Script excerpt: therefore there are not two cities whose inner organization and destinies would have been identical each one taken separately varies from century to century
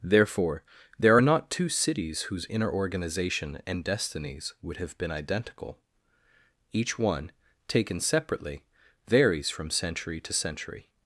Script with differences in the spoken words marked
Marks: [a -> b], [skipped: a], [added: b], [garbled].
therefore there are not two cities whose inner organization and destinies would have been identical each one taken separately varies from century to century